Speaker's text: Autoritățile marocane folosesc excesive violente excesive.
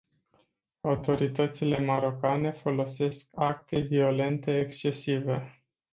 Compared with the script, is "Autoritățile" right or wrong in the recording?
right